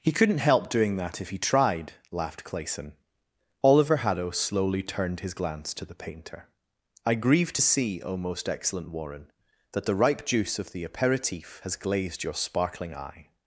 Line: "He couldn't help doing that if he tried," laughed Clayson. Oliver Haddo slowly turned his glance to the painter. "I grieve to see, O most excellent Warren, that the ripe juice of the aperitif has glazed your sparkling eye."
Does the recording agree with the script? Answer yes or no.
yes